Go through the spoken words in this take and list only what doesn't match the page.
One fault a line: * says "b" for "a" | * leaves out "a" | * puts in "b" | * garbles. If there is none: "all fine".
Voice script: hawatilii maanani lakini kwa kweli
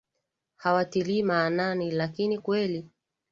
* leaves out "kwa"